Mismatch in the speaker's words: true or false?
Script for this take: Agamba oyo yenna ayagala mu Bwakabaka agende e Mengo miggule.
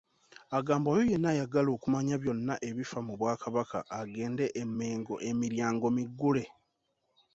true